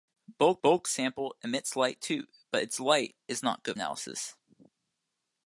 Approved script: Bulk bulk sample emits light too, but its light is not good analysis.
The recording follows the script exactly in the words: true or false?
true